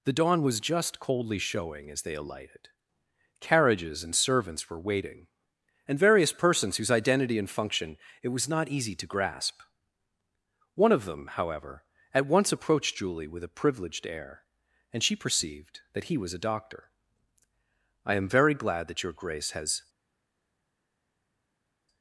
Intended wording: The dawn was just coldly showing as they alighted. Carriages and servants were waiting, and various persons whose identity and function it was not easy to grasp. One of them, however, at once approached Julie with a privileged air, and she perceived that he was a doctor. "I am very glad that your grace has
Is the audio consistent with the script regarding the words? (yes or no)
yes